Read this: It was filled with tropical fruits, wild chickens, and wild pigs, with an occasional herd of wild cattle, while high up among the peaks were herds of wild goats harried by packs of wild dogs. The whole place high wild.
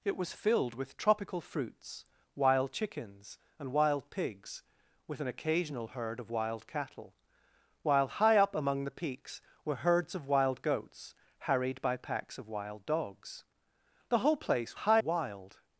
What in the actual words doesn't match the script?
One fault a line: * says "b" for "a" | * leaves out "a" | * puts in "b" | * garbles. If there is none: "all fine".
all fine